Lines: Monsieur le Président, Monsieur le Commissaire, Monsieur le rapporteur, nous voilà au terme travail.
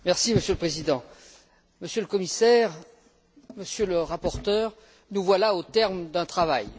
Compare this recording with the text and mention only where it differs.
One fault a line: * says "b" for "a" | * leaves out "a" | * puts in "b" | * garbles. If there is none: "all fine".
* puts in "d'un"